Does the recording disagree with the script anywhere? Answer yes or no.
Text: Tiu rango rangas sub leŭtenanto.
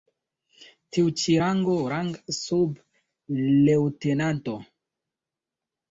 yes